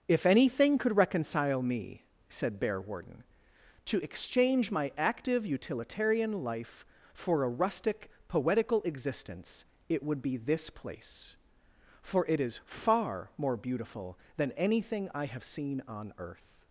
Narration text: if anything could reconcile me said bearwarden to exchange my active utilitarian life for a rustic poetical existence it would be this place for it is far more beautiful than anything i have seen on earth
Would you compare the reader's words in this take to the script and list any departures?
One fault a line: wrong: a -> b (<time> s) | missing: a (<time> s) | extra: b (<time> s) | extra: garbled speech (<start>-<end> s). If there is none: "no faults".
no faults